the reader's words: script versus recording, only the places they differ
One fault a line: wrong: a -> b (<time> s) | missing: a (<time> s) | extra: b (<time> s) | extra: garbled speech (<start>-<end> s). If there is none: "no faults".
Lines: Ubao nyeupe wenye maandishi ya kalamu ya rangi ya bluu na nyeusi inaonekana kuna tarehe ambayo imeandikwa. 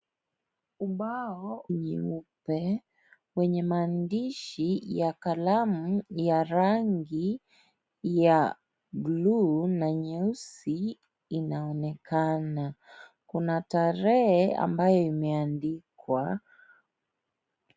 no faults